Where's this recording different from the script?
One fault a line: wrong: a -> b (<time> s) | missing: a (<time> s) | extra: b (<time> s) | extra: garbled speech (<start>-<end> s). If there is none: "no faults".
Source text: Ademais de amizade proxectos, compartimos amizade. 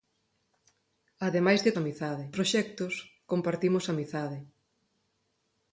no faults